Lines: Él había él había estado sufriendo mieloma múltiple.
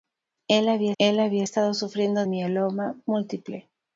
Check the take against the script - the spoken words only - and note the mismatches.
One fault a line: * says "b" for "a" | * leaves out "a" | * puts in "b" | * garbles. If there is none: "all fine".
all fine